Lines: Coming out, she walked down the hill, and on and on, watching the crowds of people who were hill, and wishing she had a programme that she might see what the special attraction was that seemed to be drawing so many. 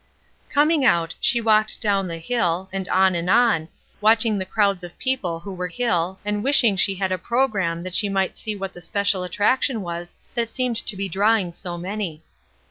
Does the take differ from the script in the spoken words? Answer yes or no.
no